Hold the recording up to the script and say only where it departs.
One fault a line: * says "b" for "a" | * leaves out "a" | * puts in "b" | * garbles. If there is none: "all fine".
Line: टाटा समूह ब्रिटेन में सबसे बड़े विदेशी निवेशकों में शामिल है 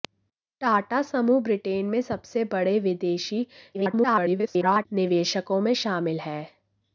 * garbles